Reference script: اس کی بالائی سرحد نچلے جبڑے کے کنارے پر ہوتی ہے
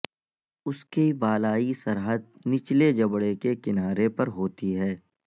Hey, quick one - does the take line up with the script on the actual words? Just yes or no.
yes